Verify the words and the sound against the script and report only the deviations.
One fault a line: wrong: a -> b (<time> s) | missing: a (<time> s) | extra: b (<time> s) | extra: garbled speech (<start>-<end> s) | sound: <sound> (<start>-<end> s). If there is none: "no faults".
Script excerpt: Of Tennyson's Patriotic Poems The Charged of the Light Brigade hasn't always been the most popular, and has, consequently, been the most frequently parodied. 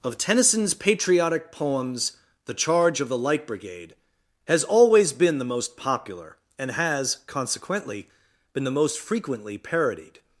wrong: Charged -> Charge (2.5 s)
wrong: hasn't -> has (4.5 s)